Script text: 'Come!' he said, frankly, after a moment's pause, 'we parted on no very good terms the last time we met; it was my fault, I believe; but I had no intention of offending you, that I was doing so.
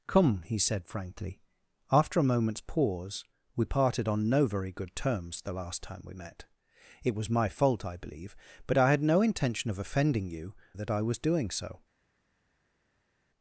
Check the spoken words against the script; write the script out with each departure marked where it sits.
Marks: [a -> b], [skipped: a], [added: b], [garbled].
'Come!' he said, frankly, after a moment's pause, 'we parted on no very good terms the last time we met; it was my fault, I believe; but I had no intention of offending you, that I was doing so.